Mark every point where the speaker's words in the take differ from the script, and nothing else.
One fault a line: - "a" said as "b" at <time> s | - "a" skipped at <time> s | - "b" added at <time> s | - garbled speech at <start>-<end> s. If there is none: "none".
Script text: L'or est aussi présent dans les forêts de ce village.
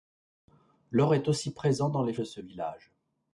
- "forêts" skipped at 2.1 s